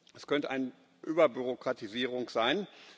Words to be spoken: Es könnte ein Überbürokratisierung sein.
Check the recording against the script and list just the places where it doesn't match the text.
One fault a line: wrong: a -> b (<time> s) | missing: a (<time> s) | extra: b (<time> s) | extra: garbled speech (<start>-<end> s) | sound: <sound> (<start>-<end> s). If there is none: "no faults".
no faults